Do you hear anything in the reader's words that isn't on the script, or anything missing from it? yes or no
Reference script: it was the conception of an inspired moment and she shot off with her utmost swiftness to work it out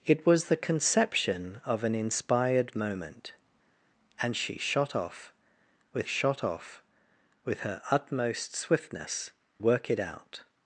yes